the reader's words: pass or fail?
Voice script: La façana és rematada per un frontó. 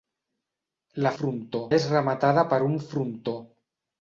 fail